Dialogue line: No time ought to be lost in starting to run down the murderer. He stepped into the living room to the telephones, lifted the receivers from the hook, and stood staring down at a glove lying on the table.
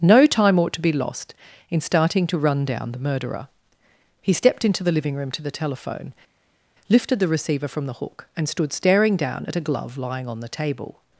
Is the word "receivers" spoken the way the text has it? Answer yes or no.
no